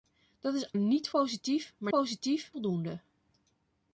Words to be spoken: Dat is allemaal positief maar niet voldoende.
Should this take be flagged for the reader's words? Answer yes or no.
yes